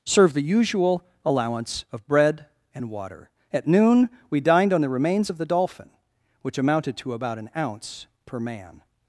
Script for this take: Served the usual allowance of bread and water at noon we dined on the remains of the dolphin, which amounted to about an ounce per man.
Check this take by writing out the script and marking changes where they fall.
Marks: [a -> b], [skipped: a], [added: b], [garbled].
Served the usual allowance of bread and water at noon we dined on the remains of the dolphin, which amounted to about an ounce per man.